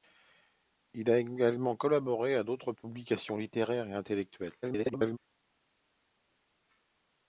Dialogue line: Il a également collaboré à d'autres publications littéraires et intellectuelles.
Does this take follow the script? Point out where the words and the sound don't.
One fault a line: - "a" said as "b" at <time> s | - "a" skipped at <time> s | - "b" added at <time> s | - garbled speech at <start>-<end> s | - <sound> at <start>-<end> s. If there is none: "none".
- garbled speech at 4.6-5.2 s